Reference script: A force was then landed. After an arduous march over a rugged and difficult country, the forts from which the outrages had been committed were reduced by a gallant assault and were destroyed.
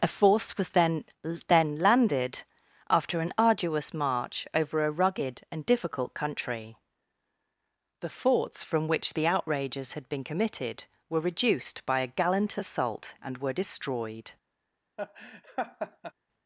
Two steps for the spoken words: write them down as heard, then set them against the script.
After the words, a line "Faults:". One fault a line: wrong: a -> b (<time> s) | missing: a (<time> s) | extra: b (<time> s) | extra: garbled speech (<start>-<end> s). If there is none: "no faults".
A force was then then landed. After an arduous march over a rugged and difficult country, the forts from which the outrages had been committed were reduced by a gallant assault and were destroyed.
Faults:
extra: then (1.5 s)